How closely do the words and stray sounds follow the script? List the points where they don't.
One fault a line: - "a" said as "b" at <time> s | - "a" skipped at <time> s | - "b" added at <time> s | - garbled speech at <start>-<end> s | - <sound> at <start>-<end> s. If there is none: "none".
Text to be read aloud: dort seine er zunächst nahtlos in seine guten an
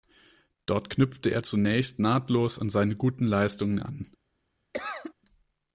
- "seine" said as "knüpfte" at 0.9 s
- "in" said as "an" at 2.6 s
- "leistungen" added at 3.2 s
- cough at 4.7-5.1 s